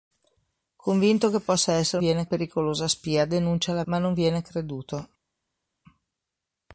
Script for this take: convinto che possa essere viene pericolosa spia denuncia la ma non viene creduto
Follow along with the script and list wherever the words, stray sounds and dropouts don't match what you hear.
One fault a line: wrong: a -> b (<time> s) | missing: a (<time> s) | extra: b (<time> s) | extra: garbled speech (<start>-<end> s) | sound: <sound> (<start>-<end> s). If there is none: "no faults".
no faults